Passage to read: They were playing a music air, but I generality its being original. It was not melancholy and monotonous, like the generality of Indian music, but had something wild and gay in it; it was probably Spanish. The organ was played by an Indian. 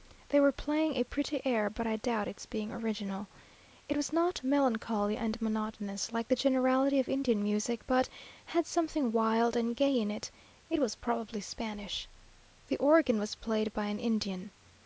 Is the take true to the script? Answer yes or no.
no